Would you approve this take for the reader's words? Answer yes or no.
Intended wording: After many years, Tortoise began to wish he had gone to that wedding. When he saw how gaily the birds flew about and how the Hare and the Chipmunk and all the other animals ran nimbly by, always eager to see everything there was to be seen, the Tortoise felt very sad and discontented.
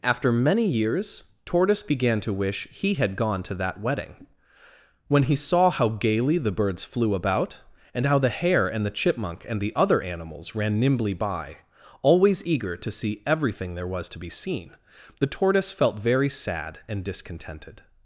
no